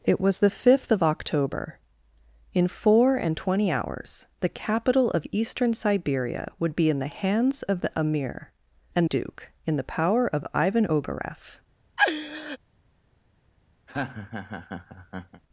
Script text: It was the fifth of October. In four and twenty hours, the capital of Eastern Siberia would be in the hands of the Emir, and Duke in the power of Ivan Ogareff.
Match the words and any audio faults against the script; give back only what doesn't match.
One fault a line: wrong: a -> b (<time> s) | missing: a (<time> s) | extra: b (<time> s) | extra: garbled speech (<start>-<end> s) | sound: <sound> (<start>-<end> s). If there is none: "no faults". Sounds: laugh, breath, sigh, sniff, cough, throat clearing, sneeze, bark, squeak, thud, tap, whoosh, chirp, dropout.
sound: laugh (12.0-12.6 s)
sound: laugh (13.9-15.4 s)